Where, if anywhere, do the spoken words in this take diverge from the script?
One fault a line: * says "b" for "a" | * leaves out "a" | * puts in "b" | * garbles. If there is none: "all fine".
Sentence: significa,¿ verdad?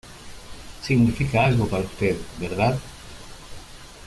* puts in "algo para usted"